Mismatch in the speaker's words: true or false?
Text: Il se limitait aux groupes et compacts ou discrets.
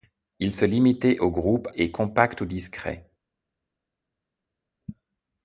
false